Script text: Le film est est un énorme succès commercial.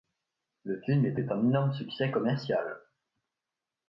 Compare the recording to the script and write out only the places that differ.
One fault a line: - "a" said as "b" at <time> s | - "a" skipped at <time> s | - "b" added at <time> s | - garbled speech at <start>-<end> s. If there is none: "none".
none